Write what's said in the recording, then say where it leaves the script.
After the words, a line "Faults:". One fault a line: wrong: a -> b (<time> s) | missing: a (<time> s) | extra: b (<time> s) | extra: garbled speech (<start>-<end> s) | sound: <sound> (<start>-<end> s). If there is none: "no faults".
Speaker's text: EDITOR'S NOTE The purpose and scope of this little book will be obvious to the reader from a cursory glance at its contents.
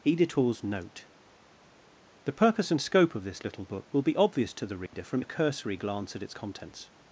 EDITOR'S NOTE The purpose and scope of this little book will be obvious to the reader from a cursory glance at its contents.
Faults:
sound: dropout (4.9-4.9 s)